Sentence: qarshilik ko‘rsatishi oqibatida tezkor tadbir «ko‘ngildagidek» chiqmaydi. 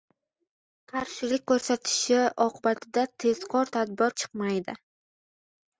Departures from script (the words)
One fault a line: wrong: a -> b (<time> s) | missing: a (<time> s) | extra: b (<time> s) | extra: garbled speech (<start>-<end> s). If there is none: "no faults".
missing: ko‘ngildagidek (4.1 s)